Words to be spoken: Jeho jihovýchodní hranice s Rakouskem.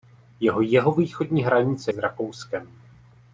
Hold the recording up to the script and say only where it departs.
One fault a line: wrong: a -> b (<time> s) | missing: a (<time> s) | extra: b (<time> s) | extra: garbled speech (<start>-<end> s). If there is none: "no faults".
no faults